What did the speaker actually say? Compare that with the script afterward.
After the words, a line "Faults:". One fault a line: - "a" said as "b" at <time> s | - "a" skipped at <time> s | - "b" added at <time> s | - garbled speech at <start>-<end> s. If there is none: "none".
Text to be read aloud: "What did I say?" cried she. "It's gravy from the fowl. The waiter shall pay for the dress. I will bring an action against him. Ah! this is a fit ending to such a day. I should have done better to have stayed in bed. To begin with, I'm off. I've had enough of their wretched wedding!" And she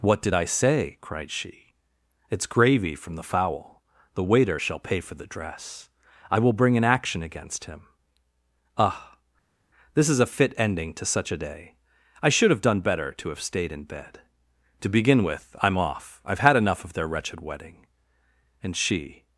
"What did I say?" cried she. "It's gravy from the fowl. The waiter shall pay for the dress. I will bring an action against him. Ah! this is a fit ending to such a day. I should have done better to have stayed in bed. To begin with, I'm off. I've had enough of their wretched wedding!" And she
Faults:
none